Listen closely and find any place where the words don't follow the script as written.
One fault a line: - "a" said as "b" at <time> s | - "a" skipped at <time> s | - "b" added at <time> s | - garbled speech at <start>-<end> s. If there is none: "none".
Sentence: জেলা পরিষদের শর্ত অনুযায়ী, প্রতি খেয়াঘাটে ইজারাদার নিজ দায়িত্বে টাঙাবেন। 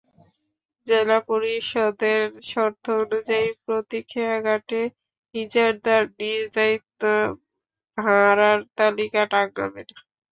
- "ভাড়ার তালিকা" added at 8.0 s